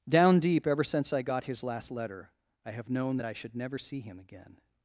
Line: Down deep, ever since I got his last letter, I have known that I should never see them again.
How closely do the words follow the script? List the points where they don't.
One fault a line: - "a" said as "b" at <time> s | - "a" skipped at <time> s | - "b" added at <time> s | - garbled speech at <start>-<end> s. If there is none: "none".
- "them" said as "him" at 4.0 s